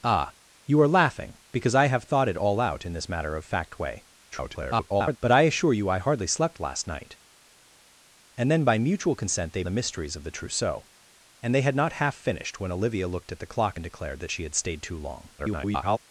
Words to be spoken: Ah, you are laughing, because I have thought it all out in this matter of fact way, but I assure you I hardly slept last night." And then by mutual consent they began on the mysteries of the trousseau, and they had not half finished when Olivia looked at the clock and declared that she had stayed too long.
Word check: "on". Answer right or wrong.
wrong